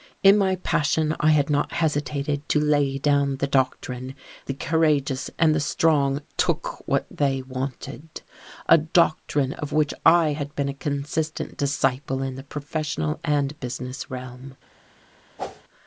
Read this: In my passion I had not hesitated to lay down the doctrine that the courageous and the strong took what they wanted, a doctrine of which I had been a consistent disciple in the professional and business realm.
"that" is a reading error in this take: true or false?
true